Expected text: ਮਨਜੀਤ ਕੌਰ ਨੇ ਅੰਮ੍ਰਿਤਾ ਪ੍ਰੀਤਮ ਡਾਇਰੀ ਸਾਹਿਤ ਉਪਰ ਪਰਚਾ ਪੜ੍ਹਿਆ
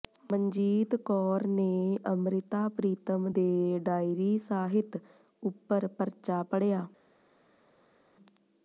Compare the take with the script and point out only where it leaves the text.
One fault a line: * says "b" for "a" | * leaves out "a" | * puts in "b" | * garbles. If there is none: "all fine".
* puts in "ਦੇ"